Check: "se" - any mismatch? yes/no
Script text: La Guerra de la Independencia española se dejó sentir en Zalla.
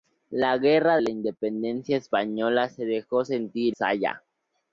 no